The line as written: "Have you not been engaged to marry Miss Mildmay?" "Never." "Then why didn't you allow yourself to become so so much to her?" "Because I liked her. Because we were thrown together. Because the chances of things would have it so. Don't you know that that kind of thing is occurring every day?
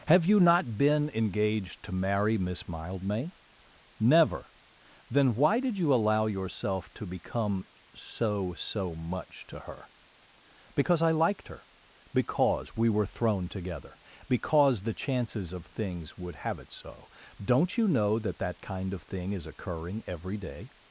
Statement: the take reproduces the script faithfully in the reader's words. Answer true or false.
false